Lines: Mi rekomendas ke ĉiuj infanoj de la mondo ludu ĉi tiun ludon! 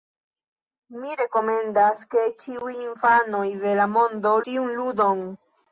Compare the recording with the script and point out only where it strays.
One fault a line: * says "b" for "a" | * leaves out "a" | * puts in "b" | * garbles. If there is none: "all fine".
* leaves out "ludu ĉi"